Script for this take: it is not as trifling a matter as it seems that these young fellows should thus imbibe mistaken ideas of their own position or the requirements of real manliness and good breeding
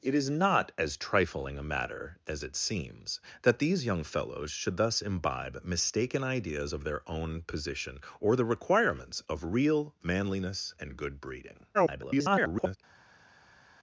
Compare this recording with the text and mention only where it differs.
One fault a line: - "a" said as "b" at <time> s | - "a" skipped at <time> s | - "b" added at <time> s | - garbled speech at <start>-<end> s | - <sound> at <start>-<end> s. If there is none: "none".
- garbled speech at 11.7-12.8 s